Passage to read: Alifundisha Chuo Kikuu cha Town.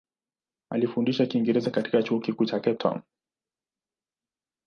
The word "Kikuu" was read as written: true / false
true